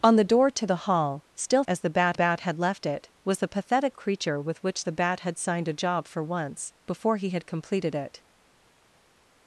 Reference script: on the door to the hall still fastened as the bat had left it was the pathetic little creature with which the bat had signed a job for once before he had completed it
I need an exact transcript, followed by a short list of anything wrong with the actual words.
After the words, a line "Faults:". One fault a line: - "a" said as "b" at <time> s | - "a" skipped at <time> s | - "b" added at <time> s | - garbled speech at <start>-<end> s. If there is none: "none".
on the door to the hall still as the bat bat had left it was the pathetic creature with which the bat had signed a job for once before he had completed it
Faults:
- "fastened" skipped at 1.6 s
- "bat" added at 2.1 s
- "little" skipped at 4.0 s